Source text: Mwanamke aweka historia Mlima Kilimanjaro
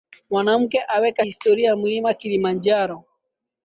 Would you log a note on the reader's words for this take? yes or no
no